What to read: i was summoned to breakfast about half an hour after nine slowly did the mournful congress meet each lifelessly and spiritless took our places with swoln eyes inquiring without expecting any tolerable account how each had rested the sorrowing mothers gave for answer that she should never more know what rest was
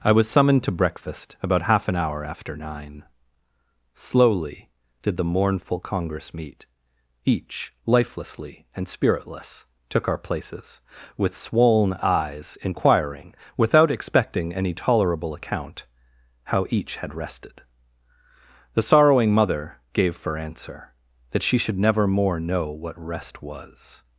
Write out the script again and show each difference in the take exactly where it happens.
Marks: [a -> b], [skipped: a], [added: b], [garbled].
i was summoned to breakfast about half an hour after nine slowly did the mournful congress meet each lifelessly and spiritless took our places with swoln eyes inquiring without expecting any tolerable account how each had rested the sorrowing [mothers -> mother] gave for answer that she should never more know what rest was